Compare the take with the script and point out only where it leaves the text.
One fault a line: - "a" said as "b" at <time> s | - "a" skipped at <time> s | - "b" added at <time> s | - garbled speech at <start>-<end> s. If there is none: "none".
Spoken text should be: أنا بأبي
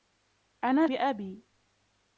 none